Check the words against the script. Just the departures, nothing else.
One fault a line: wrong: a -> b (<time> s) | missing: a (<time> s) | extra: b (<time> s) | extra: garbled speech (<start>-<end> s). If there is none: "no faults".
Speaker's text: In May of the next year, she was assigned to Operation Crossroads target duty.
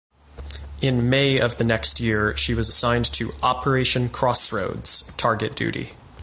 no faults